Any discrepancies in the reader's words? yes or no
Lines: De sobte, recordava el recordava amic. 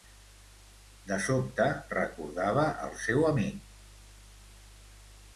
yes